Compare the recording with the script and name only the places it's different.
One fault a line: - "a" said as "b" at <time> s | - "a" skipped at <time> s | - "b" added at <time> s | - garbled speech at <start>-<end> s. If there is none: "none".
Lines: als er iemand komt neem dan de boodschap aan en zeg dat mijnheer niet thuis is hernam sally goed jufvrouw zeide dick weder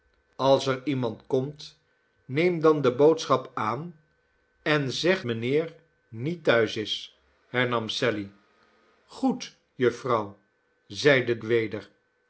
- "dat" skipped at 5.3 s
- "dick" skipped at 11.4 s